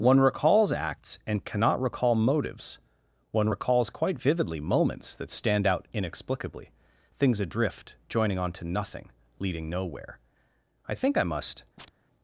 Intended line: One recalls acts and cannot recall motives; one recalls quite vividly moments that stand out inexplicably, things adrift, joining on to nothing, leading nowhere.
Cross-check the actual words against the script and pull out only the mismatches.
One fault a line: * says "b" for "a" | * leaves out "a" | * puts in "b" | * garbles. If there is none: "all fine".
* puts in "I think I must"